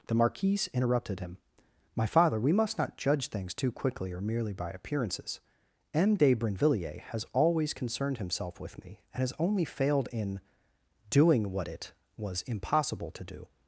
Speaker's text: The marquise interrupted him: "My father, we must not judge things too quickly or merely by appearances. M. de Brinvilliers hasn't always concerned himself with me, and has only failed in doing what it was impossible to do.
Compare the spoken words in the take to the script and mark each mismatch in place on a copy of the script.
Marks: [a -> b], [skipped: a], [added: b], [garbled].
The marquise interrupted him: "My father, we must not judge things too quickly or merely by appearances. M. de Brinvilliers [hasn't -> has] always concerned himself with me, and has only failed in doing what it was impossible to do.